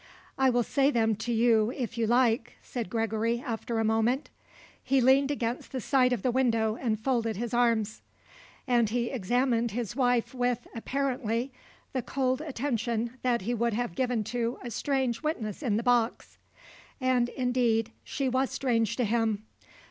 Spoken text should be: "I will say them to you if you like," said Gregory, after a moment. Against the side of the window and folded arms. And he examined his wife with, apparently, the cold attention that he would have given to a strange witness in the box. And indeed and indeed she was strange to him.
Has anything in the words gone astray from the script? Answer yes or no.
yes